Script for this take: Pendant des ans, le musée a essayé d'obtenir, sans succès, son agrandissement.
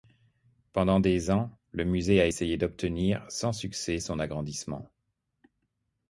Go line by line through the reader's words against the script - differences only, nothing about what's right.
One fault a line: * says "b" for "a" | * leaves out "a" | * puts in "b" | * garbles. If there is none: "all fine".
all fine